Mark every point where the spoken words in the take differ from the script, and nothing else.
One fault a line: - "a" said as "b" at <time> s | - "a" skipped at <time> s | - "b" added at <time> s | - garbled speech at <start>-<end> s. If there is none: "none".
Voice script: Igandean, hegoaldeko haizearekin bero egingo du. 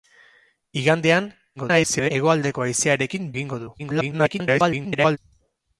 - garbled speech at 1.6-2.1 s
- "bero" skipped at 3.3 s
- garbled speech at 3.8-5.2 s